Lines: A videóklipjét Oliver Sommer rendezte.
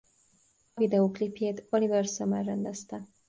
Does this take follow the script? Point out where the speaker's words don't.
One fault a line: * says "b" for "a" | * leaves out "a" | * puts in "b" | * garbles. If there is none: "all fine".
all fine